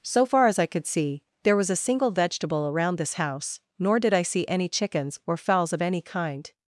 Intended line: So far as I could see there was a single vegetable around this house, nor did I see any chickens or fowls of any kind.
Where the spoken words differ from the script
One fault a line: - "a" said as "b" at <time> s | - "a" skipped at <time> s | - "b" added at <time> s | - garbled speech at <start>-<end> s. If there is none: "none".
none